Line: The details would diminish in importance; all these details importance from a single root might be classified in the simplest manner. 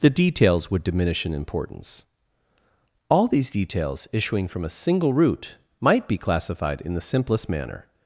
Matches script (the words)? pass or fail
fail